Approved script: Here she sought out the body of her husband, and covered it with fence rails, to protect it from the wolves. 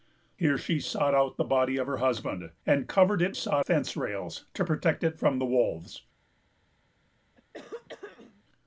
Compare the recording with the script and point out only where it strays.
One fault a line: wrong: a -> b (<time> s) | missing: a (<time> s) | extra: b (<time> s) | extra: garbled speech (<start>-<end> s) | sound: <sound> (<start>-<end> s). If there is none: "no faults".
wrong: with -> sought (3.3 s)
sound: throat clearing (7.4-8.4 s)